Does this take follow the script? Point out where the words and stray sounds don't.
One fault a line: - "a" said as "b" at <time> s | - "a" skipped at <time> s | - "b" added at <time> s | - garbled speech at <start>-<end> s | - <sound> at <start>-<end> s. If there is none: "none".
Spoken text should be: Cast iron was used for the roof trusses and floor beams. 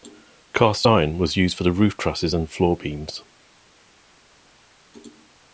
none